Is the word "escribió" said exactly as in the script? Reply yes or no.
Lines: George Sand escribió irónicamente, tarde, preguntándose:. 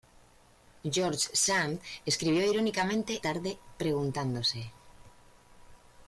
yes